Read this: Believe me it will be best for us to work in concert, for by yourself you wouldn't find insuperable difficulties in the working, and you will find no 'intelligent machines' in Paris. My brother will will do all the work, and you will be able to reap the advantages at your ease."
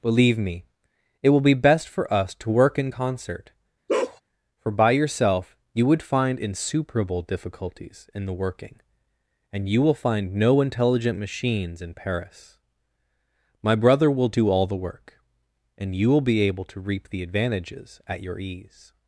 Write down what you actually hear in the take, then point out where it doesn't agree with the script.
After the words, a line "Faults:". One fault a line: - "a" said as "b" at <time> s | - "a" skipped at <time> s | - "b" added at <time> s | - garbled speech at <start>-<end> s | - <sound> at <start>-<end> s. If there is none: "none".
Believe me it will be best for us to work in concert, for by yourself you would find insuperable difficulties in the working, and you will find no 'intelligent machines' in Paris. My brother will do all the work, and you will be able to reap the advantages at your ease."
Faults:
- bark at 3.9-4.2 s
- "wouldn't" said as "would" at 5.8 s
- "will" skipped at 14.3 s